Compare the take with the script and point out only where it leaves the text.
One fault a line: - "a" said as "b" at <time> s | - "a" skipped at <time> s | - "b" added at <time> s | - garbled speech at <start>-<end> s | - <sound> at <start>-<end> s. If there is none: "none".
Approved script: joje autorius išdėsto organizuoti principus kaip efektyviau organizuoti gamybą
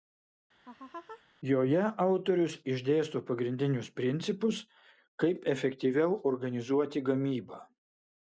- laugh at 0.6-1.2 s
- "organizuoti" said as "pagrindinius" at 3.3 s